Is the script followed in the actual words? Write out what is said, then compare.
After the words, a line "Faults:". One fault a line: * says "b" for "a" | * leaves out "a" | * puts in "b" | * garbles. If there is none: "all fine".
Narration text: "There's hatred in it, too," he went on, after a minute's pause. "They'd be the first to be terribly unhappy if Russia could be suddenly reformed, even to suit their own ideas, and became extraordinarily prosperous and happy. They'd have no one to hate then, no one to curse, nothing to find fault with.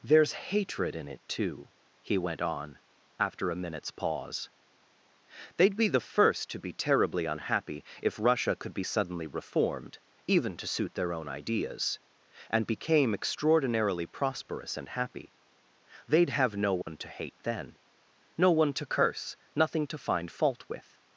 "There's hatred in it, too," he went on, after a minute's pause. "They'd be the first to be terribly unhappy if Russia could be suddenly reformed, even to suit their own ideas, and became extraordinarily prosperous and happy. They'd have no one to hate then, no one to curse, nothing to find fault with.
Faults:
all fine